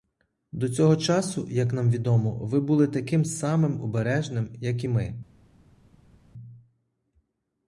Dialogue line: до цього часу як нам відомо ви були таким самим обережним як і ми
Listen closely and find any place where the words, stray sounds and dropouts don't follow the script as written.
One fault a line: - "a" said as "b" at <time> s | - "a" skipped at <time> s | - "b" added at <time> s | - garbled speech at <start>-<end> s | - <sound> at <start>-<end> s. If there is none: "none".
none